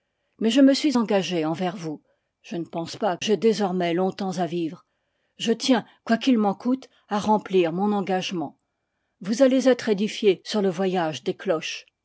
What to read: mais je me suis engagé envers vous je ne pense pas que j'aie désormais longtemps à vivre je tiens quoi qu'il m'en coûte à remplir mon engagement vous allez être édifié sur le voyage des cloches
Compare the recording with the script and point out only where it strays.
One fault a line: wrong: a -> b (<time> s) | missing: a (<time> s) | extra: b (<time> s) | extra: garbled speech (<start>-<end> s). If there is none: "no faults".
missing: que (3.2 s)